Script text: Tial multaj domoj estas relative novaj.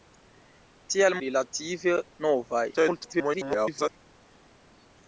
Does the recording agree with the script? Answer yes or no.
no